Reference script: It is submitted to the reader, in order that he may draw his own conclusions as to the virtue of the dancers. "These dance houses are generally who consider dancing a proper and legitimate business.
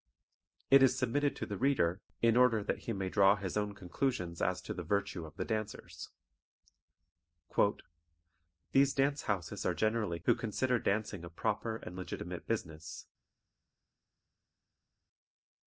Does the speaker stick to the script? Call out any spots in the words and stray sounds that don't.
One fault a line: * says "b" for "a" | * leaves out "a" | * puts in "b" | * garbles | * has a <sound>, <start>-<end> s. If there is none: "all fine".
all fine